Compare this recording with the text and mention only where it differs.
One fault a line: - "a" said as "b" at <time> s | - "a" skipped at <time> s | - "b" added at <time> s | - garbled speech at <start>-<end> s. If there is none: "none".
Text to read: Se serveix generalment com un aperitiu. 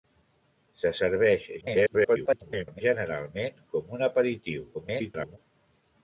- garbled speech at 1.6-2.8 s
- garbled speech at 4.7-5.4 s